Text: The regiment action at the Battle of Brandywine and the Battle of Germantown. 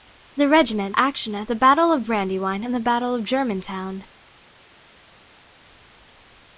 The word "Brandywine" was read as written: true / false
true